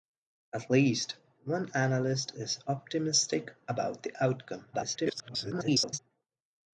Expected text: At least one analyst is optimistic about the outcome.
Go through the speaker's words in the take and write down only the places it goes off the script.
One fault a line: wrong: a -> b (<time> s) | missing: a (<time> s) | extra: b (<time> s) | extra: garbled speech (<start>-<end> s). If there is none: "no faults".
extra: garbled speech (4.7-6.0 s)